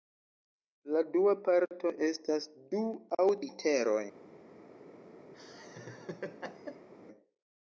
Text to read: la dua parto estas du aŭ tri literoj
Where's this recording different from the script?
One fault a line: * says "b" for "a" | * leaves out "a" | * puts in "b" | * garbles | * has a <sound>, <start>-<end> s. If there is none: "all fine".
* leaves out "tri"
* has a laugh, 5.3-6.9 s